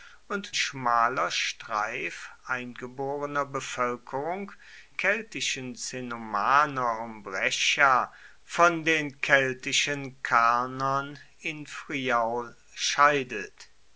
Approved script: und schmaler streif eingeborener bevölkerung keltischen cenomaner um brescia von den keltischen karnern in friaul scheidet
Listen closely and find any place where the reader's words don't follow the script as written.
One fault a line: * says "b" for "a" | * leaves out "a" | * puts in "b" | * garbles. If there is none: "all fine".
all fine